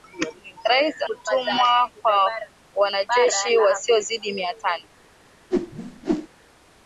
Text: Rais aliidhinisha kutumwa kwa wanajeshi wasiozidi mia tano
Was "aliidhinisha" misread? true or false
true